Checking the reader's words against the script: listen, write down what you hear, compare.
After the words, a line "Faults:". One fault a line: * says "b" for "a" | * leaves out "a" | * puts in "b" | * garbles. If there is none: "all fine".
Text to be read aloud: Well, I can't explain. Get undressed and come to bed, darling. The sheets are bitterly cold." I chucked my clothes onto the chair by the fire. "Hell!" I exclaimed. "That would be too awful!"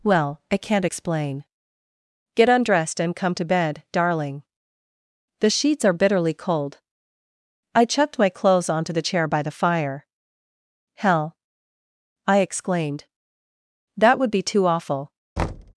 Well, I can't explain. Get undressed and come to bed, darling. The sheets are bitterly cold." I chucked my clothes onto the chair by the fire. "Hell!" I exclaimed. "That would be too awful!"
Faults:
all fine